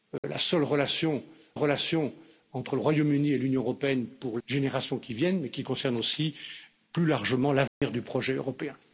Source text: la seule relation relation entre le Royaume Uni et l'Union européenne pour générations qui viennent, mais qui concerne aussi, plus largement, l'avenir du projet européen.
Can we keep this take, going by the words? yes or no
yes